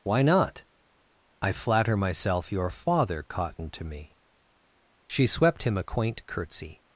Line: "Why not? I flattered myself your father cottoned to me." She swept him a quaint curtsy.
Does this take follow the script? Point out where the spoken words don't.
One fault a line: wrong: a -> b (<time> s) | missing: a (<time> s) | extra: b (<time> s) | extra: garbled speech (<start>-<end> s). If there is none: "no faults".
wrong: flattered -> flatter (1.5 s)